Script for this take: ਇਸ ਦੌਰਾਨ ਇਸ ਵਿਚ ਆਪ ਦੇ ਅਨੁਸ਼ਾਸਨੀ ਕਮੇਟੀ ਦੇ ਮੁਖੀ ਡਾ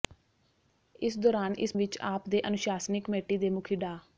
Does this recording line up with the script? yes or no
yes